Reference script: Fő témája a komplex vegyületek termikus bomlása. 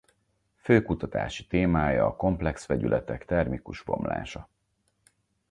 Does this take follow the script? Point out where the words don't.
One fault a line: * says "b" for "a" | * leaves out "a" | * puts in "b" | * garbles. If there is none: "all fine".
* puts in "kutatási"